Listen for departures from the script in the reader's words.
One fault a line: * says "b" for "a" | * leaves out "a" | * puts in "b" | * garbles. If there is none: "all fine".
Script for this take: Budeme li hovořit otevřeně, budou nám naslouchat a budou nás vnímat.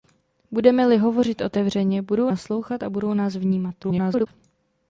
* leaves out "nám"
* garbles